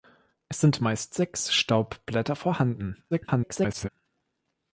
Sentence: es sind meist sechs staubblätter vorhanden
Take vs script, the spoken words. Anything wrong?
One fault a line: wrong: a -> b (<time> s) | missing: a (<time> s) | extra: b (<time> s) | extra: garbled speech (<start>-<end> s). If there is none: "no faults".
extra: garbled speech (3.1-3.9 s)